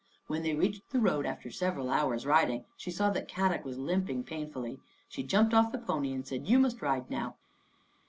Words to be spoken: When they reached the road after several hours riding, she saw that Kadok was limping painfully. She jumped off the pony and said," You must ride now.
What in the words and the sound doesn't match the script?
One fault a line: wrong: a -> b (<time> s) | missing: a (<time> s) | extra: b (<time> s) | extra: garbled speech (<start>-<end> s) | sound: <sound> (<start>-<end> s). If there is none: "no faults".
no faults